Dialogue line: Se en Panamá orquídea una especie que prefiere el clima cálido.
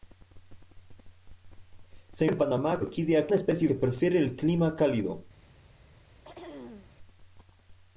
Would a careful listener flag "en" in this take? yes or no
no